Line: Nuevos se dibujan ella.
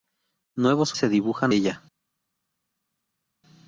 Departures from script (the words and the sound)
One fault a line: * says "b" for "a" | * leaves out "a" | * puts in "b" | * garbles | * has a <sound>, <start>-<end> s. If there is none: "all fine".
all fine